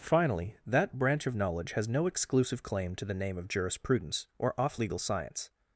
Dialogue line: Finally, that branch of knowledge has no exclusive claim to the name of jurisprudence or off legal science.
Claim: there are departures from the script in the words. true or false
false